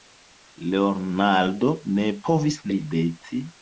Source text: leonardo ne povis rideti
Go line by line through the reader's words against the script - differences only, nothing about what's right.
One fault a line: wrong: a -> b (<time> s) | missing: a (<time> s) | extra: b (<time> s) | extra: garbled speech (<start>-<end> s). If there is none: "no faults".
no faults